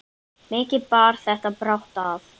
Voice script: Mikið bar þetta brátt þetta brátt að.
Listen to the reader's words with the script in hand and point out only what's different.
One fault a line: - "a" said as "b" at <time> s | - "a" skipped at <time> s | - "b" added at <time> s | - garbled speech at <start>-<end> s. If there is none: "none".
- "þetta brátt" skipped at 2.0 s